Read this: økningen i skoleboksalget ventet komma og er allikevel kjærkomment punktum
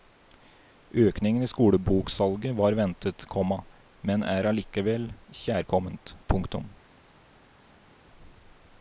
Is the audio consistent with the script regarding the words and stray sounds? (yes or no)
no